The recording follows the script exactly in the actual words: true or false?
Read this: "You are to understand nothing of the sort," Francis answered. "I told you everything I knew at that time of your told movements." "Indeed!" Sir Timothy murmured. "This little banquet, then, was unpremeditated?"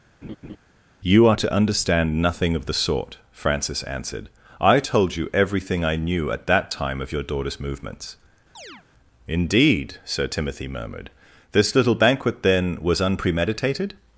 false